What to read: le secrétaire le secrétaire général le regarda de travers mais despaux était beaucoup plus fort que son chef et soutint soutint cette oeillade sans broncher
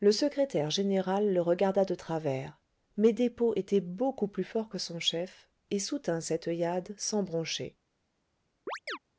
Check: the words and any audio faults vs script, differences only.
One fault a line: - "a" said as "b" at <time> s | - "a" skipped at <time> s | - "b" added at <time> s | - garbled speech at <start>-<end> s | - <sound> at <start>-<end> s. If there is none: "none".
- "le secrétaire" skipped at 0.7 s
- "soutint" skipped at 6.2 s
- chirp at 8.7-9.0 s